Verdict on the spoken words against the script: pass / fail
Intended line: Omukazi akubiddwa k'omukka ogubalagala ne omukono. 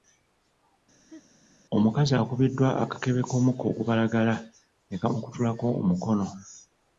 fail